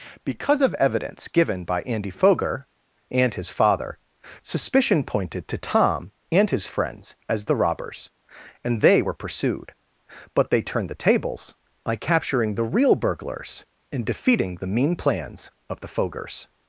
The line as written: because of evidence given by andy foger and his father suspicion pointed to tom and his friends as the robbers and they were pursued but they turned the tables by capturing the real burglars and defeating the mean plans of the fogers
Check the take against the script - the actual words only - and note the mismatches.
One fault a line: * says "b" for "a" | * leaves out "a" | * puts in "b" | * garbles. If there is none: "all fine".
all fine